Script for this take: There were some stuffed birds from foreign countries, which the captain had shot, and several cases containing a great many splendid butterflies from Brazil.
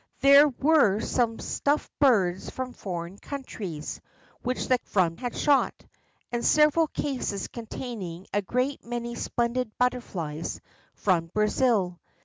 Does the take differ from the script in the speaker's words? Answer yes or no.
yes